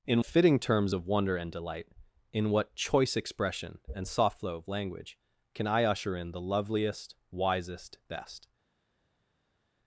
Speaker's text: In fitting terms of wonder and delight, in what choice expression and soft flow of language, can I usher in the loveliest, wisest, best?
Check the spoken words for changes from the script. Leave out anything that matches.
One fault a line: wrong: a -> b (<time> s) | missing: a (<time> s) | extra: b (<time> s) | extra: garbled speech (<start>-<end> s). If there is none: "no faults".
no faults